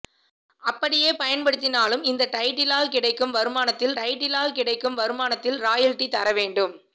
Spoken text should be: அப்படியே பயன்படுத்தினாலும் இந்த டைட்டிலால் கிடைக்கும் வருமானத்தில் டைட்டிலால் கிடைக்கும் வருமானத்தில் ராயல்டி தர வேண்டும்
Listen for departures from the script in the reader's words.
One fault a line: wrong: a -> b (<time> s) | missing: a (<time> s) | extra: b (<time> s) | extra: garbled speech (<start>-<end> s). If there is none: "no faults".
no faults